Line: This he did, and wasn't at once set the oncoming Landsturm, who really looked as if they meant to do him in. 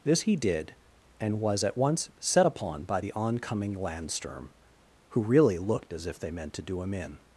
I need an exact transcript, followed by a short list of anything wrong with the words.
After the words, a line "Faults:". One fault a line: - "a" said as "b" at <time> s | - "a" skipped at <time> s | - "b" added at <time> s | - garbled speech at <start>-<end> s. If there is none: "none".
This he did, and was at once set upon by the oncoming Landsturm, who really looked as if they meant to do him in.
Faults:
- "wasn't" said as "was" at 1.4 s
- "upon by" added at 2.5 s